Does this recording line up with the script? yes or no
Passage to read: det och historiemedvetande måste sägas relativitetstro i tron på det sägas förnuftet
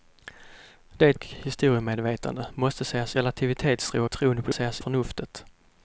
yes